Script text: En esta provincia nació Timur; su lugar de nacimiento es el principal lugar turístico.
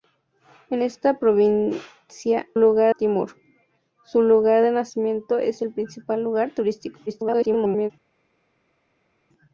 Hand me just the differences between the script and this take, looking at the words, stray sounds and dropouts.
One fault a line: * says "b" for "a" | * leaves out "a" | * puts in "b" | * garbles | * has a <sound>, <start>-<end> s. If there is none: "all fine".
* says "lugar" for "nació"
* garbles